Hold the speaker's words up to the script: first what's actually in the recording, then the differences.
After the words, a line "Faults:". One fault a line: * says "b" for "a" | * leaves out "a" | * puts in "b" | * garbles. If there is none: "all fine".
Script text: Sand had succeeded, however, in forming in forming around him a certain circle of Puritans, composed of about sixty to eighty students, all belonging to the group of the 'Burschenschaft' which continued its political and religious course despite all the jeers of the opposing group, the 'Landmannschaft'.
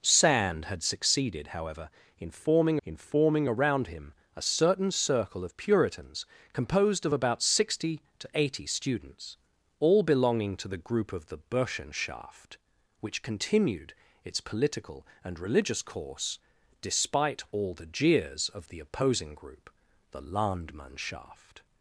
Sand had succeeded, however, in forming in forming around him a certain circle of Puritans, composed of about sixty to eighty students, all belonging to the group of the 'Burschenschaft' which continued its political and religious course despite all the jeers of the opposing group, the 'Landmannschaft'.
Faults:
all fine